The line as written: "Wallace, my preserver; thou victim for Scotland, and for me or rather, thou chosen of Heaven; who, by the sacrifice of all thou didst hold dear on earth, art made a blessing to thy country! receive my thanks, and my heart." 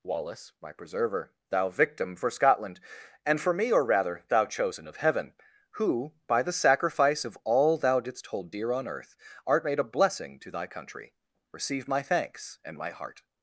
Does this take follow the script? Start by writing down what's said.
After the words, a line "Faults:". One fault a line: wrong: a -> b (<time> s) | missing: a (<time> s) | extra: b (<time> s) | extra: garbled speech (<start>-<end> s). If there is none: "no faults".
"Wallace, my preserver; thou victim for Scotland, and for me or rather, thou chosen of Heaven; who, by the sacrifice of all thou didst hold dear on earth, art made a blessing to thy country! receive my thanks, and my heart."
Faults:
no faults